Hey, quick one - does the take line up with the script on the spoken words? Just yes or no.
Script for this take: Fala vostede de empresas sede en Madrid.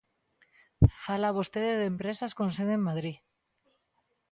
no